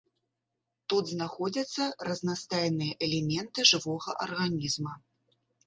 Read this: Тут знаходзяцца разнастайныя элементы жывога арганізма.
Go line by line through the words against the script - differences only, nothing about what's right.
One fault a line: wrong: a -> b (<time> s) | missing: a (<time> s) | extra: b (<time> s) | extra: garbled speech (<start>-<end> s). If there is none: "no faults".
no faults